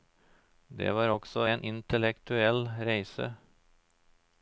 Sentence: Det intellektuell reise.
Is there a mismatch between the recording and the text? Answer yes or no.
yes